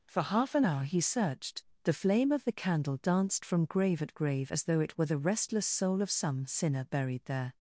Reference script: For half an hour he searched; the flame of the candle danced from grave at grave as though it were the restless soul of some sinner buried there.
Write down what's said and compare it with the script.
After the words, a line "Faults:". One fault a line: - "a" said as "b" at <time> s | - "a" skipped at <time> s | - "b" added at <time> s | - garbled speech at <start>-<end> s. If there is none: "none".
For half an hour he searched; the flame of the candle danced from grave at grave as though it were the restless soul of some sinner buried there.
Faults:
none